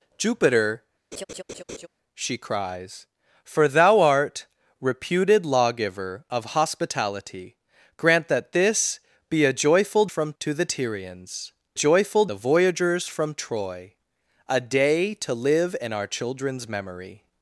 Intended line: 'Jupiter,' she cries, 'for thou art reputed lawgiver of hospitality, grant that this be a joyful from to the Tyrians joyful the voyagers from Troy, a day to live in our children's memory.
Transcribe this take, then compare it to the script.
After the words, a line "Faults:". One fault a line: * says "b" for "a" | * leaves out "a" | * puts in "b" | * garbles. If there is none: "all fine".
'Jupiter,' she cries, 'for thou art reputed lawgiver of hospitality, grant that this be a joyful from to the Tyrians joyful the voyagers from Troy, a day to live in our children's memory.
Faults:
all fine